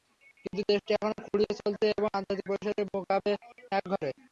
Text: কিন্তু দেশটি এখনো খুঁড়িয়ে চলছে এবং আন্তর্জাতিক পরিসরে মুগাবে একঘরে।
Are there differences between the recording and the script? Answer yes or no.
no